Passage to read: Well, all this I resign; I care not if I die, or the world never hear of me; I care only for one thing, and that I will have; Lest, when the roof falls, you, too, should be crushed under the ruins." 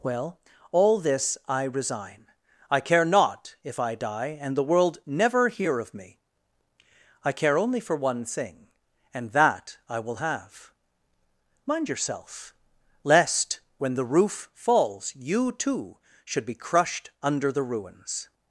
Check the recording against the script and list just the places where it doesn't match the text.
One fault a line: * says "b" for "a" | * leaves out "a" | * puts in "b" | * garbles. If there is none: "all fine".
* says "and" for "or"
* puts in "Mind yourself"